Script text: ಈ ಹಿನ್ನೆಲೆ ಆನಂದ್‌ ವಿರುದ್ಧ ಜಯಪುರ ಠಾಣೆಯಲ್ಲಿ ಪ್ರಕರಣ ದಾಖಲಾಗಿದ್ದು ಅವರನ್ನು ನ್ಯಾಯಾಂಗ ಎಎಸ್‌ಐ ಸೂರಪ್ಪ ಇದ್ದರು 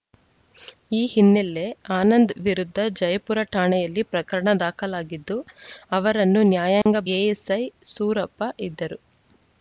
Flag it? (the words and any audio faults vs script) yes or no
yes